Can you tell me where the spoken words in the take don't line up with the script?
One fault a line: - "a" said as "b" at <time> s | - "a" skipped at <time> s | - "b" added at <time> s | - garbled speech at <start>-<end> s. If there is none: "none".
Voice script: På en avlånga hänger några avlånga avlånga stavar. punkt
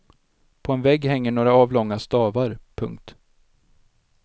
- "avlånga" said as "vägg" at 0.8 s
- "avlånga" skipped at 2.0 s